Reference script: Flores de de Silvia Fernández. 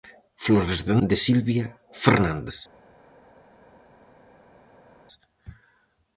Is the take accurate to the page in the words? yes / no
yes